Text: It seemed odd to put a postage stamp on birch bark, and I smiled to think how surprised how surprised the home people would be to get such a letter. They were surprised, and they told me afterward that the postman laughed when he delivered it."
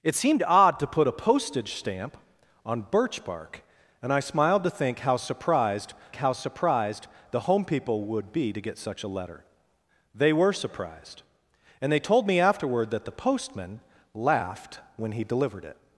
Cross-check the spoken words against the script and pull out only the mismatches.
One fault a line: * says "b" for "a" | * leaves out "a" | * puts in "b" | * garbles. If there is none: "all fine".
all fine